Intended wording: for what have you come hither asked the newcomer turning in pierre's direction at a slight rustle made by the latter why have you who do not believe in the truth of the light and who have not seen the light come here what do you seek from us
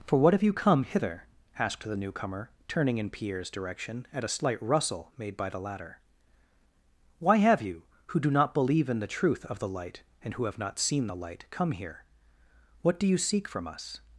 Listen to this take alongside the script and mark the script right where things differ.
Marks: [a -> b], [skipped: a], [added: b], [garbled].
for what have you come hither asked the newcomer turning in pierre's direction at a slight rustle made by the latter why have you who do not believe in the truth of the light and who have not seen the light come here what do you seek from us